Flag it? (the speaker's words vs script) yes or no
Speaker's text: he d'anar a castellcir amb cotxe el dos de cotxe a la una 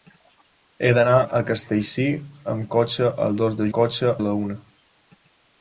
no